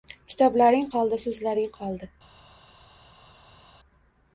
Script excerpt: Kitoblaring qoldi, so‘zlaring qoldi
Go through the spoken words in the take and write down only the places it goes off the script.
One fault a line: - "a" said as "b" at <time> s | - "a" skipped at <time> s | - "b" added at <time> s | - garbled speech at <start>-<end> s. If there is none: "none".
none